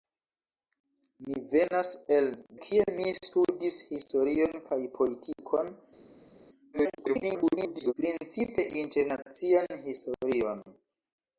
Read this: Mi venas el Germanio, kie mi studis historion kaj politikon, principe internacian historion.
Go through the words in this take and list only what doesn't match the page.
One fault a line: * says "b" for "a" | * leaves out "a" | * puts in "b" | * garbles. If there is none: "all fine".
* leaves out "Germanio"
* garbles